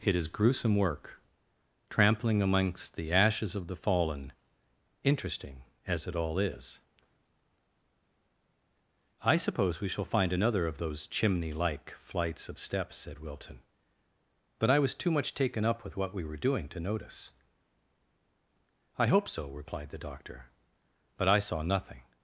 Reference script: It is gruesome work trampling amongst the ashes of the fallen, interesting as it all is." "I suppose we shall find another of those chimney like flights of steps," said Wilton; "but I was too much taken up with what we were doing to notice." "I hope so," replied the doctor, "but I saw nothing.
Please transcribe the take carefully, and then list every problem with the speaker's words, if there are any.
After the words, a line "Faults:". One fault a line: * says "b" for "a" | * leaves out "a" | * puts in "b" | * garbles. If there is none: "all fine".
It is gruesome work trampling amongst the ashes of the fallen, interesting as it all is." "I suppose we shall find another of those chimney like flights of steps," said Wilton; "but I was too much taken up with what we were doing to notice." "I hope so," replied the doctor, "but I saw nothing.
Faults:
all fine